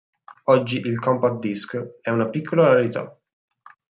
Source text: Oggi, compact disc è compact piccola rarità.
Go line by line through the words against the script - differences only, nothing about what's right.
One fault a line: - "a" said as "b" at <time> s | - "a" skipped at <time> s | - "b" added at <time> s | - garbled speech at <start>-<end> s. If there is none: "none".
- "il" added at 0.8 s
- "compact" said as "una" at 2.1 s